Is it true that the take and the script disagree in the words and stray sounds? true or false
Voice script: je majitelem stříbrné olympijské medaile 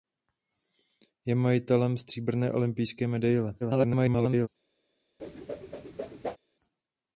true